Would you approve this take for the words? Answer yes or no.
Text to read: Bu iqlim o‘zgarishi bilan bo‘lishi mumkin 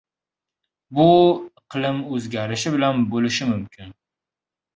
yes